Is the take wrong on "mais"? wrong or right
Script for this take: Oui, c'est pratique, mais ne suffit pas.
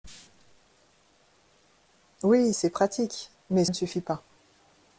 right